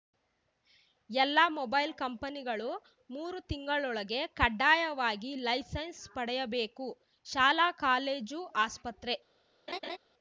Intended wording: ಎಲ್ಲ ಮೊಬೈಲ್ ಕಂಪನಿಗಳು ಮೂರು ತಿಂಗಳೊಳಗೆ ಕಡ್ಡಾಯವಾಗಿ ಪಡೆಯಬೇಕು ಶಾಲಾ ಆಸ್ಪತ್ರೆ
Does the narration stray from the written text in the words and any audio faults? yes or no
yes